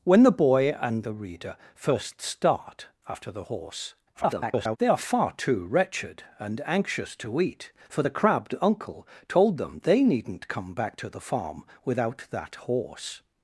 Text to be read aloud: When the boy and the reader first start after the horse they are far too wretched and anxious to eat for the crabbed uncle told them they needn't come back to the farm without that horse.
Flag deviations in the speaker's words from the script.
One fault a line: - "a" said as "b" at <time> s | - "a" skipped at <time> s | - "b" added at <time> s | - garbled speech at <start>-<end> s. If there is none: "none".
- garbled speech at 4.1-4.8 s